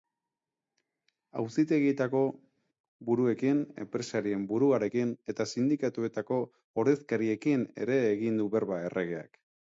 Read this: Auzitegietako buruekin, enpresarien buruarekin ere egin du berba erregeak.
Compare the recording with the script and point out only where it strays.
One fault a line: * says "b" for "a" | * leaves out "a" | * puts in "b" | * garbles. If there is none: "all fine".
* puts in "eta sindikatuetako ordezkariekin"